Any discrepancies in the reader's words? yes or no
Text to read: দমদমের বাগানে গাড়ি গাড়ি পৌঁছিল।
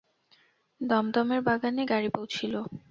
yes